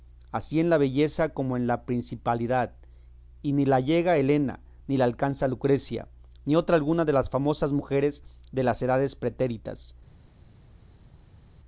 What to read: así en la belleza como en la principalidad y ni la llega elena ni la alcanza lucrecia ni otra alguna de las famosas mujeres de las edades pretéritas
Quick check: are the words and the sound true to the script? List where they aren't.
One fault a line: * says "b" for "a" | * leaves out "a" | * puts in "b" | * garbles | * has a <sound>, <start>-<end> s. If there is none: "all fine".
all fine